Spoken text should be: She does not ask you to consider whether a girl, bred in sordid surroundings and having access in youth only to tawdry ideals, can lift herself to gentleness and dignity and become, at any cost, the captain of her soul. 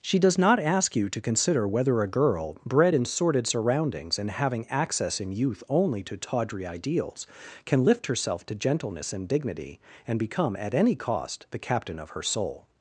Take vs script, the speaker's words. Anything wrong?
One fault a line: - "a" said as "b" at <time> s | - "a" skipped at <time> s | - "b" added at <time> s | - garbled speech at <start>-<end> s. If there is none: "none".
none